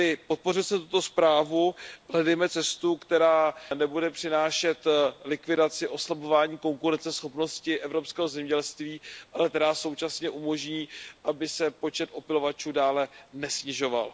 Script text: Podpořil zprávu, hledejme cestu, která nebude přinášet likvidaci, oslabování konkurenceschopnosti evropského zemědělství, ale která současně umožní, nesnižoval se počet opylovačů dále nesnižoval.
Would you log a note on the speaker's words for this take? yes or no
yes